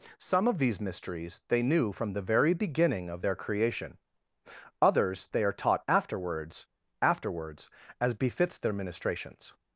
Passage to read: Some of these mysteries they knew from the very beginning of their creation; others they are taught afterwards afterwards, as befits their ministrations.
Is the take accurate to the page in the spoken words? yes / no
yes